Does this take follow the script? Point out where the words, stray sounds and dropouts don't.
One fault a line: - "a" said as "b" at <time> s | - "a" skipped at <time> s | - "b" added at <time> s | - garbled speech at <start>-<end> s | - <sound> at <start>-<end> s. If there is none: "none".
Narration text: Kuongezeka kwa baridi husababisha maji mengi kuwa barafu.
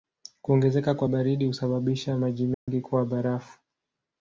- dropout at 2.5-2.7 s